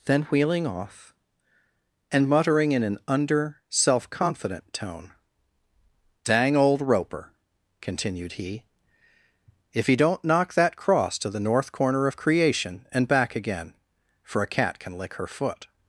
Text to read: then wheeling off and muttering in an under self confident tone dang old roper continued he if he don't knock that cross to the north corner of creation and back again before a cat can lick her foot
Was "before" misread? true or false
true